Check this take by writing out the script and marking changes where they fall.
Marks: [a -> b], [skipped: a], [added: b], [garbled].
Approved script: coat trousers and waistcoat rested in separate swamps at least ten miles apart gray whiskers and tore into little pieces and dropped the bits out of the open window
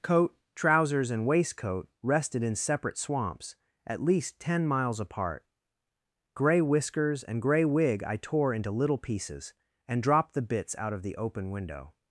coat trousers and waistcoat rested in separate swamps at least ten miles apart gray whiskers and [added: gray wig i] tore into little pieces and dropped the bits out of the open window